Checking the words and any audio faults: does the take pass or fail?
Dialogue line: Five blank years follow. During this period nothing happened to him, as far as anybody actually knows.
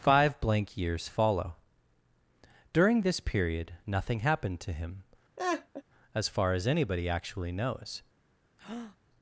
fail